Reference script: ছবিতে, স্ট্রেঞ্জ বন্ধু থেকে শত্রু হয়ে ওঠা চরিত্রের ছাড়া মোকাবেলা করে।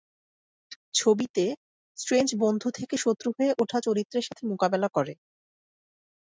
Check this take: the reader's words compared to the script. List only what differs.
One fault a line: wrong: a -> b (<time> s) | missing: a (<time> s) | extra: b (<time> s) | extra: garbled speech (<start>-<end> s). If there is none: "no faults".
wrong: ছাড়া -> সাথে (4.3 s)